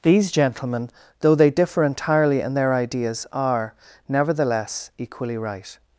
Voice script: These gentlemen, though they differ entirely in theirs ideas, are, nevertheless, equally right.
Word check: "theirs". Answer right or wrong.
wrong